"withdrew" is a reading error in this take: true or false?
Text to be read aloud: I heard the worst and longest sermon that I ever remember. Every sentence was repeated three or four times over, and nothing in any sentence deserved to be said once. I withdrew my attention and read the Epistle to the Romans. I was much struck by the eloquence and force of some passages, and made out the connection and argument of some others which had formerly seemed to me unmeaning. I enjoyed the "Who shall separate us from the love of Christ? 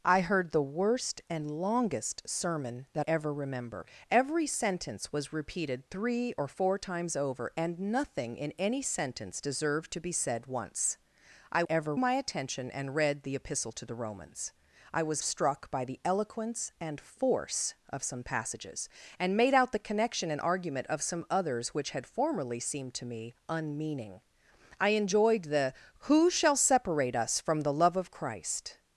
true